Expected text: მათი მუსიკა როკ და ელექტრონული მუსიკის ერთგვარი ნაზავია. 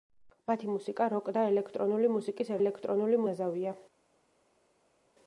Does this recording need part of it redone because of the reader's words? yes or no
yes